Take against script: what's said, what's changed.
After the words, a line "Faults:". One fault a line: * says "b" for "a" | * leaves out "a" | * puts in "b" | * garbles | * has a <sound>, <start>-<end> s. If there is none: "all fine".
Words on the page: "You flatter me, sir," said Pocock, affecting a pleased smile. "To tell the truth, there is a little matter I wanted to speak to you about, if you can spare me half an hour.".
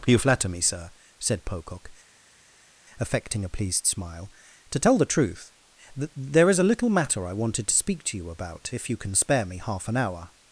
"You flatter me, sir," said Pocock, affecting a pleased smile. "To tell the truth, th there is a little matter I wanted to speak to you about, if you can spare me half an hour.".
Faults:
* puts in "th"